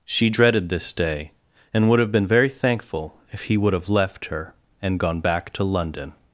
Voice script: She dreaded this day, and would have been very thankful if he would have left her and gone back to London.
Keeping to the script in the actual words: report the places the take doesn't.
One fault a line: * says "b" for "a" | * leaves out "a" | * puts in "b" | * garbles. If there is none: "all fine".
all fine